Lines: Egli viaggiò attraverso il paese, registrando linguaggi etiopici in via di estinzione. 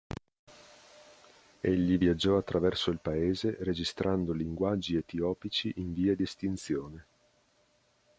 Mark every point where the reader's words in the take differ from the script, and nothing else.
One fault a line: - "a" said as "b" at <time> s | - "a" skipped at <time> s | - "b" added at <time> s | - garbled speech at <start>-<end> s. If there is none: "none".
none